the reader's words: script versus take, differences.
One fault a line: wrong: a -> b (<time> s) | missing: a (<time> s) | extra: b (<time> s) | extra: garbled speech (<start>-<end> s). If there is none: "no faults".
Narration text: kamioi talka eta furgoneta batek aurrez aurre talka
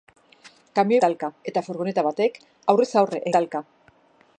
no faults